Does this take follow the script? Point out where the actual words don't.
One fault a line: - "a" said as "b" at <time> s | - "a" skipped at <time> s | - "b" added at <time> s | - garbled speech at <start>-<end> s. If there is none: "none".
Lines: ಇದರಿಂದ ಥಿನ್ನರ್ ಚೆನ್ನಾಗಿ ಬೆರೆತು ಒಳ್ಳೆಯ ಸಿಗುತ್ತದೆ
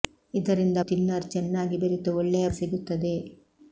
none